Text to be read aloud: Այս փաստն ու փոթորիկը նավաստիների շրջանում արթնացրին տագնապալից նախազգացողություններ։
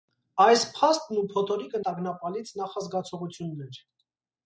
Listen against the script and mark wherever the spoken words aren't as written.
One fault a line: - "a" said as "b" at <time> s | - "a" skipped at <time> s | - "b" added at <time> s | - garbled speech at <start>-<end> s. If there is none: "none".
- "նավաստիների շրջանում արթնացրին" skipped at 1.8 s